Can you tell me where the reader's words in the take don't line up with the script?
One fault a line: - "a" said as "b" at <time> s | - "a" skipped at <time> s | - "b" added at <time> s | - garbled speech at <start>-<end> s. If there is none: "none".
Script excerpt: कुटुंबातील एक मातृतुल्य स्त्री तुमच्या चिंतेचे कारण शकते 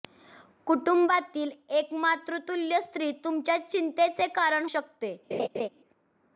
none